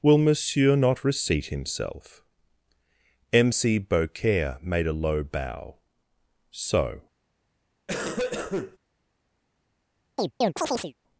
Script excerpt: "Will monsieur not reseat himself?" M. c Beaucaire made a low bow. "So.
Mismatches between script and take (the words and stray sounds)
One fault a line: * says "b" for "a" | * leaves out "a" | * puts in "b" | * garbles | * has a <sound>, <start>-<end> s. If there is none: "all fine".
* has a cough, 7.9-8.8 s
* has a chirp, 10.2-10.9 s